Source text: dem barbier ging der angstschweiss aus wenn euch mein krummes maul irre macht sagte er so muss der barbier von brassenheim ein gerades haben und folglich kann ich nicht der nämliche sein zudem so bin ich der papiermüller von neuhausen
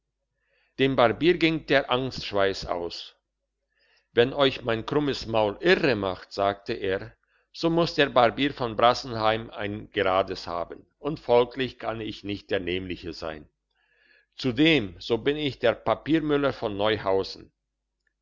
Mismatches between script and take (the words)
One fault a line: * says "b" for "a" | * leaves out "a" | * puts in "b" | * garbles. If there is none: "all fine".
all fine